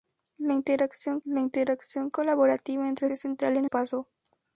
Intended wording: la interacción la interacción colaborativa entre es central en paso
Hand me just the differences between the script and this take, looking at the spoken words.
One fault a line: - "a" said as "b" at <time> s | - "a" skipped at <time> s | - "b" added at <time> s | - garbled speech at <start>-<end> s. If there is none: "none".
none